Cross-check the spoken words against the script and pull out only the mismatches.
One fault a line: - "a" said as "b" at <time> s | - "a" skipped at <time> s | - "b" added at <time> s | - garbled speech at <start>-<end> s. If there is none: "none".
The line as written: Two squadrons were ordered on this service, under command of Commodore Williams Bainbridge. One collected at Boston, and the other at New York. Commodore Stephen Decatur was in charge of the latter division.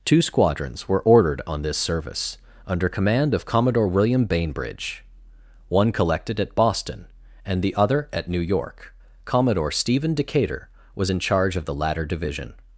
- "Williams" said as "William" at 3.9 s